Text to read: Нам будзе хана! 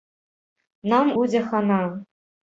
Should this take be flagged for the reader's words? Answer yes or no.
no